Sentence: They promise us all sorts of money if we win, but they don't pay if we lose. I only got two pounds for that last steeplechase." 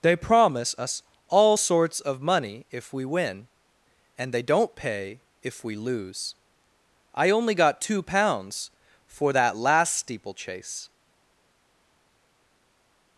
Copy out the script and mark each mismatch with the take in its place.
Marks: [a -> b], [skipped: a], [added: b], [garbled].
They promise us all sorts of money if we win, [but -> and] they don't pay if we lose. I only got two pounds for that last steeplechase."